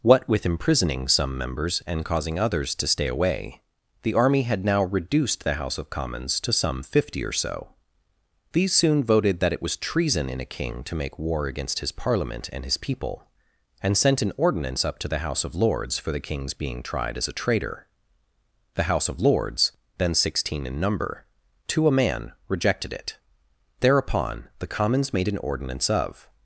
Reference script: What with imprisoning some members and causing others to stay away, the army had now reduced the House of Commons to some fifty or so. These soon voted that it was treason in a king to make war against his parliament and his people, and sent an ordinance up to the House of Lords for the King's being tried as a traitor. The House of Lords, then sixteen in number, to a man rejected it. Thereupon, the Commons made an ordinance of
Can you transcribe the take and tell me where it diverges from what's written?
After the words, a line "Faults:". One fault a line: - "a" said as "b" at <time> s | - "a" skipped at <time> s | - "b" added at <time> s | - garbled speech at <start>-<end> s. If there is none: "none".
What with imprisoning some members and causing others to stay away, the army had now reduced the House of Commons to some fifty or so. These soon voted that it was treason in a king to make war against his parliament and his people, and sent an ordinance up to the House of Lords for the King's being tried as a traitor. The House of Lords, then sixteen in number, to a man rejected it. Thereupon, the Commons made an ordinance of
Faults:
none